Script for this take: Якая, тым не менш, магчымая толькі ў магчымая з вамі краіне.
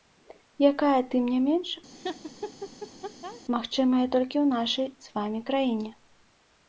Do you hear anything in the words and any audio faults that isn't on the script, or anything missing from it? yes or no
yes